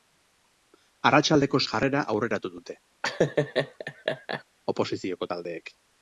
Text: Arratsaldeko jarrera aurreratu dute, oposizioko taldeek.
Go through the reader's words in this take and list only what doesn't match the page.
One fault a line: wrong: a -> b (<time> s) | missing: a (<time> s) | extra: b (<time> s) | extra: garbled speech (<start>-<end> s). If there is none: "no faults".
no faults